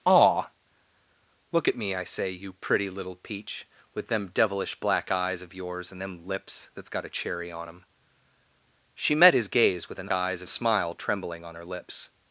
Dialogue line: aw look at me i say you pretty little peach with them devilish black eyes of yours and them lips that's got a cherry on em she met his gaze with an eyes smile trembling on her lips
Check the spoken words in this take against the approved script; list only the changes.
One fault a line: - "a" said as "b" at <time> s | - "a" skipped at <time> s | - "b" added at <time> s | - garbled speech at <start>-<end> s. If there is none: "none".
none